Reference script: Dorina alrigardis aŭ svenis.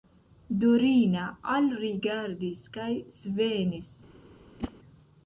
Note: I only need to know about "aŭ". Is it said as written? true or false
false